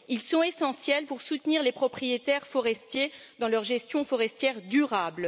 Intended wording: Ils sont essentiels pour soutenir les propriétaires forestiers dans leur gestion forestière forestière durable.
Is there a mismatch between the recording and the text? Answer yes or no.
yes